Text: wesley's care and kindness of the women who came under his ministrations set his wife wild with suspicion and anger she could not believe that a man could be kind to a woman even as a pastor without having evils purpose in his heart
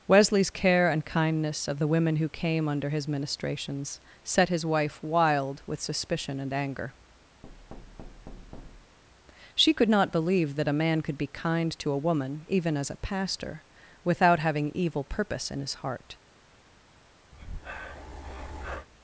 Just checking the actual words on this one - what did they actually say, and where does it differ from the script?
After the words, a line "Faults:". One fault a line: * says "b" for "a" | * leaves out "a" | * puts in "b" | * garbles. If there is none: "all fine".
wesley's care and kindness of the women who came under his ministrations set his wife wild with suspicion and anger she could not believe that a man could be kind to a woman even as a pastor without having evil purpose in his heart
Faults:
* says "evil" for "evils"